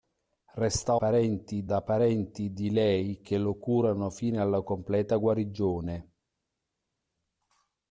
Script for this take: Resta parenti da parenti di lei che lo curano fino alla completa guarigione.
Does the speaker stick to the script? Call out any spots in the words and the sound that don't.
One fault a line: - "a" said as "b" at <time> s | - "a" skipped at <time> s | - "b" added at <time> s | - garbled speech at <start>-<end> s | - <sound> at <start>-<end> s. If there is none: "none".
none